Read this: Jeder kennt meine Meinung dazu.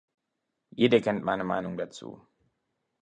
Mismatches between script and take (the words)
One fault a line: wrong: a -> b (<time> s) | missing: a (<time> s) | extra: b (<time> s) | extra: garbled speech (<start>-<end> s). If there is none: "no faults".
no faults